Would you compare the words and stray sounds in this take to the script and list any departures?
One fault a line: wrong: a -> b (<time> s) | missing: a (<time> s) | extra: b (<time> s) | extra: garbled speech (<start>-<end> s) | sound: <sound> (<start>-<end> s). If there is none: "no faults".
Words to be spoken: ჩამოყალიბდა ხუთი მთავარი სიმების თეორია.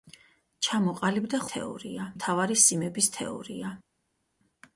wrong: ხუთი -> თეორია (1.5 s)